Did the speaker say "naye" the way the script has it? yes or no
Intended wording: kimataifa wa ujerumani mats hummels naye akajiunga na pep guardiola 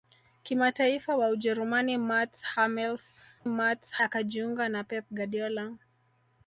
no